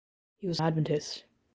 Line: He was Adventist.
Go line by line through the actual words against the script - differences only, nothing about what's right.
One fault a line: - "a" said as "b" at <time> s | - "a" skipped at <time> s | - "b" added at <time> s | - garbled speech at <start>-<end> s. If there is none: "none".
none